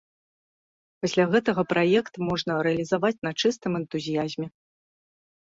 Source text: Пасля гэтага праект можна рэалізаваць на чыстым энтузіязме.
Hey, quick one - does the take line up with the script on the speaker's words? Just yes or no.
yes